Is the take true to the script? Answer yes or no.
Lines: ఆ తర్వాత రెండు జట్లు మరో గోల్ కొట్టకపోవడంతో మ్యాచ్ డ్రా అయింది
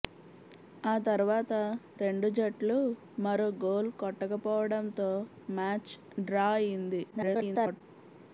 no